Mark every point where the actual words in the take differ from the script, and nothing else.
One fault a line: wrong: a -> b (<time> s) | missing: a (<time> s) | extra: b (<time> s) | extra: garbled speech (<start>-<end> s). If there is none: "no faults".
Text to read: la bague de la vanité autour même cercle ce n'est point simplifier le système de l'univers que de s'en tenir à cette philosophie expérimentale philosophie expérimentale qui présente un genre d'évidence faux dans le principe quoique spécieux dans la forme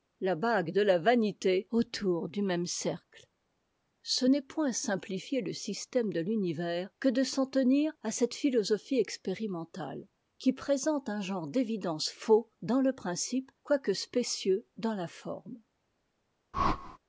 extra: du (2.3 s)
missing: philosophie expérimentale (10.1 s)